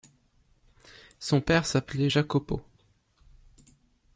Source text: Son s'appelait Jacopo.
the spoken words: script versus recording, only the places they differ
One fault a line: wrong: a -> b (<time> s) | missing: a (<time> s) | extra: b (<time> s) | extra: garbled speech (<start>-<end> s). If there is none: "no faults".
extra: père (1.4 s)